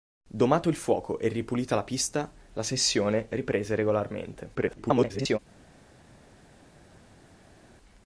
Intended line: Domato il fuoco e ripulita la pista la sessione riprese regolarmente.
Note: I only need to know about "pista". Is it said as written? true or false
true